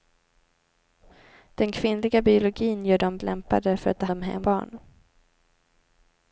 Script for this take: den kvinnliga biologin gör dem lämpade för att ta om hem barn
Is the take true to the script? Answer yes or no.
yes